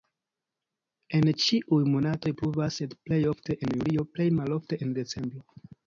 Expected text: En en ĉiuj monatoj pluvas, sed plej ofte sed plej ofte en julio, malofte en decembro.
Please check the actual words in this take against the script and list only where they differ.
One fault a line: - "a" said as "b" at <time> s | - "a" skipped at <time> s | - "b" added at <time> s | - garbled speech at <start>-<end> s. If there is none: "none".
- "en" skipped at 1.3 s
- "sed plej ofte" skipped at 3.6 s
- "plej" added at 4.2 s